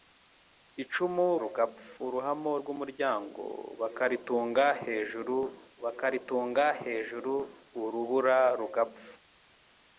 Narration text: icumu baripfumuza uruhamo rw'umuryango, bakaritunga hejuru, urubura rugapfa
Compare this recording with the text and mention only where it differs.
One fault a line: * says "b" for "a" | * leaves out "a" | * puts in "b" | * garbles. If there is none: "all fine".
* says "rugapfa" for "baripfumuza"
* puts in "bakaritunga hejuru"